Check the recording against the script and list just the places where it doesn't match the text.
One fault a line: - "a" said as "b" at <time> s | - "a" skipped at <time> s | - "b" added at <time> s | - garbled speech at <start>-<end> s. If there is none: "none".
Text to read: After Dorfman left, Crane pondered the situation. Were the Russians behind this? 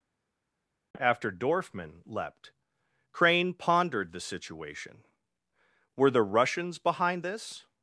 - "left" said as "leapt" at 2.0 s